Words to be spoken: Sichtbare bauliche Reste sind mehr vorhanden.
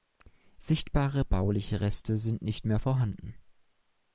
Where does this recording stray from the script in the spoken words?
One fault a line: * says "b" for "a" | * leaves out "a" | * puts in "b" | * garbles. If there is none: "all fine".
* puts in "nicht"